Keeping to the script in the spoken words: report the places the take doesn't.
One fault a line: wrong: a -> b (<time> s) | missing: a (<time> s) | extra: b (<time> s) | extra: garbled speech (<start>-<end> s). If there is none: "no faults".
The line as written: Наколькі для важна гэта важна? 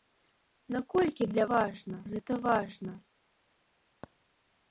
no faults